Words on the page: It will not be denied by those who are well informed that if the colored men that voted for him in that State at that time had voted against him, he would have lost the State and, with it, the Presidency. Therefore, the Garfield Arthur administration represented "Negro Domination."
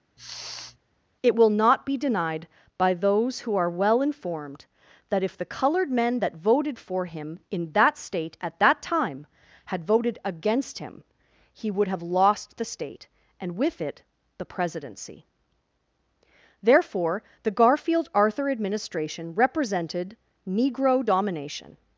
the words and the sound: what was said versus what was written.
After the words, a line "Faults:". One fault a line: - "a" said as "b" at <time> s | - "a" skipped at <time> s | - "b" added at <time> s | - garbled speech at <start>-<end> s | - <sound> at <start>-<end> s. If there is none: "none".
It will not be denied by those who are well informed that if the colored men that voted for him in that State at that time had voted against him, he would have lost the State and, with it, the Presidency. Therefore, the Garfield Arthur administration represented "Negro Domination."
Faults:
- sniff at 0.2-0.8 s